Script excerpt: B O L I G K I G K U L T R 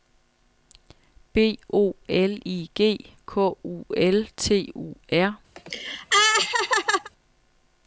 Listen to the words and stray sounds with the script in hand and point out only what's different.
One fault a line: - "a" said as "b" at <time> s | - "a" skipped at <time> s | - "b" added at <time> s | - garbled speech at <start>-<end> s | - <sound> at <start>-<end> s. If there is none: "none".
- "I G K" skipped at 3.5 s
- "U" added at 4.8 s
- laugh at 5.6-7.1 s